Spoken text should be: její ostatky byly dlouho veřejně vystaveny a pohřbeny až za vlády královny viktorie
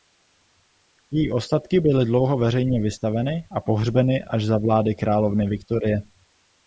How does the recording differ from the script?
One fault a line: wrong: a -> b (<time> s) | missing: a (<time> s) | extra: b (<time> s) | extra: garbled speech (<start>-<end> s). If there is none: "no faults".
no faults